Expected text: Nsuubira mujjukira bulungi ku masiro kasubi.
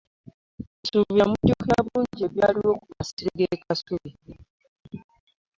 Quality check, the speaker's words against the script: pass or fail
fail